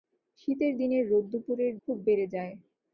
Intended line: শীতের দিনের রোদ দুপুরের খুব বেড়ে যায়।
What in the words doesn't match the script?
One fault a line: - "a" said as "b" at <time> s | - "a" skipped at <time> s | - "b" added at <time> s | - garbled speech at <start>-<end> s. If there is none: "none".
none